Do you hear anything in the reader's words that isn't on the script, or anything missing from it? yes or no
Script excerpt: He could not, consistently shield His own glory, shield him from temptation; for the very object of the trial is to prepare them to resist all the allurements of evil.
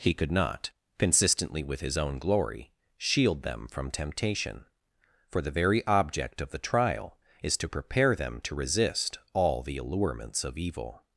yes